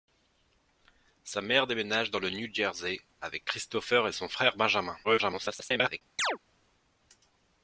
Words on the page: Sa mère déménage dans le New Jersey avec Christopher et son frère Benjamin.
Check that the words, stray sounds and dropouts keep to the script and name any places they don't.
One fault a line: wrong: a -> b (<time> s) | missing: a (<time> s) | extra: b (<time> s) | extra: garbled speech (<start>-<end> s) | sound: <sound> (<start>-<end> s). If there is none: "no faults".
extra: garbled speech (5.0-6.0 s)
sound: chirp (6.2-6.4 s)